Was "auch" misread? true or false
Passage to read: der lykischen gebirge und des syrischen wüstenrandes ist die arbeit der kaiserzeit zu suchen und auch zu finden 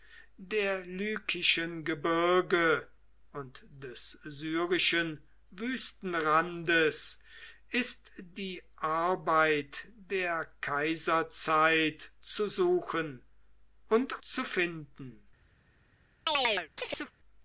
true